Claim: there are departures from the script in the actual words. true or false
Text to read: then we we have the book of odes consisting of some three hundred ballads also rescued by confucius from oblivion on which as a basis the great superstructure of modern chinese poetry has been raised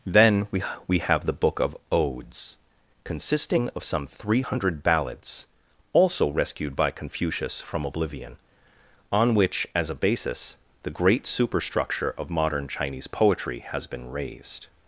false